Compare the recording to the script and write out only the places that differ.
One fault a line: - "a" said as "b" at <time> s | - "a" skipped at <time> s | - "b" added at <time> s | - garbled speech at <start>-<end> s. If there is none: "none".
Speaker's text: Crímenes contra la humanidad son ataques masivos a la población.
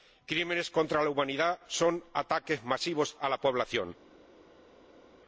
none